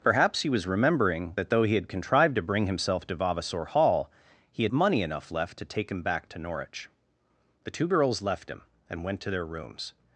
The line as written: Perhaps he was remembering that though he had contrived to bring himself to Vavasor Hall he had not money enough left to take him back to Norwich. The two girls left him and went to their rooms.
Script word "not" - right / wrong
wrong